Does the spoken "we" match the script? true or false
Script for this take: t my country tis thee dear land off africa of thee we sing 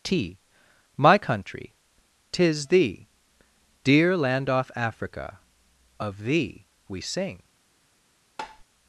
true